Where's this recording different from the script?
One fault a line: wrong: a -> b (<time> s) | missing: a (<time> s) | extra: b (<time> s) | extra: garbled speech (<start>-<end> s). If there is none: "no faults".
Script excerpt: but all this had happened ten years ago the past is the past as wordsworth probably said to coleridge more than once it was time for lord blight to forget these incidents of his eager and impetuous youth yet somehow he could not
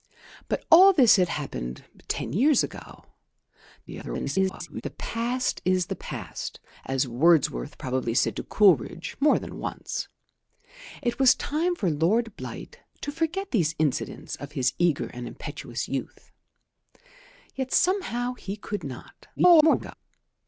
extra: garbled speech (3.9-4.8 s)
extra: garbled speech (19.4-19.9 s)